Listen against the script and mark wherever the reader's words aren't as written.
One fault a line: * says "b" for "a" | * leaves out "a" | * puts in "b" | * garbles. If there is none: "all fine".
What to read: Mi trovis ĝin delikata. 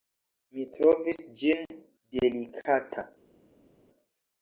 all fine